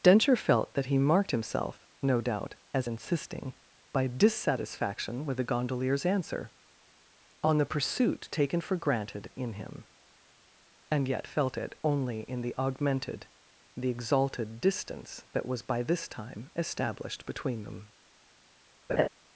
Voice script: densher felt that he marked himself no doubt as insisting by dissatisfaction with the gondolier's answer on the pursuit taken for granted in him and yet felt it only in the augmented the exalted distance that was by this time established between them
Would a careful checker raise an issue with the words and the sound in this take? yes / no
yes